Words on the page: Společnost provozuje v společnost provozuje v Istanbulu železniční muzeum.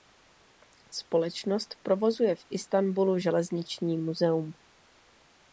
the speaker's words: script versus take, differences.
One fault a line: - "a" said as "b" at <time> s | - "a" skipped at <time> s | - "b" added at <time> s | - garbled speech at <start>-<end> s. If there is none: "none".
- "společnost provozuje v" skipped at 2.5 s